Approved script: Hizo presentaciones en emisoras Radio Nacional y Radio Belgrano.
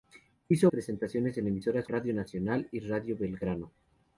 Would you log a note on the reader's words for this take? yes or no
no